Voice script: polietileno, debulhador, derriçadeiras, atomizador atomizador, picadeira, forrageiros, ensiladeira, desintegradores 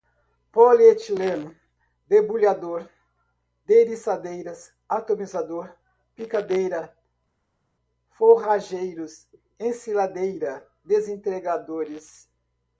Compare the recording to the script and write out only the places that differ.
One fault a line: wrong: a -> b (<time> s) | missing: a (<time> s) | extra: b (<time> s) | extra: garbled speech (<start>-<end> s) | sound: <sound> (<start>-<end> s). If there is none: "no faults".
missing: atomizador (5.7 s)